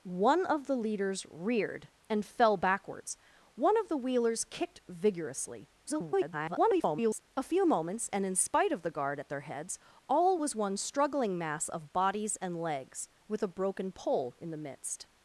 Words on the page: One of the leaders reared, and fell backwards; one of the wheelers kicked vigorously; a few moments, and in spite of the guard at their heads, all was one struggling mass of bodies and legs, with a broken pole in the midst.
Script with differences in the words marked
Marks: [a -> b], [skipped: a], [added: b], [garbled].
One of the leaders reared, and fell backwards; one of the wheelers kicked vigorously; [garbled] a few moments, and in spite of the guard at their heads, all was one struggling mass of bodies and legs, with a broken pole in the midst.